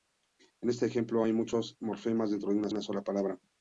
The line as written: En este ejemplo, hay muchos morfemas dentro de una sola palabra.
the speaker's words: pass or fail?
fail